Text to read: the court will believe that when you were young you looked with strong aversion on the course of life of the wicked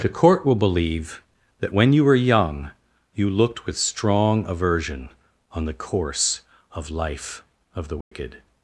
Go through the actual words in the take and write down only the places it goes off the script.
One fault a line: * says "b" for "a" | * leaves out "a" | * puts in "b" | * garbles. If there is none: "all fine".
all fine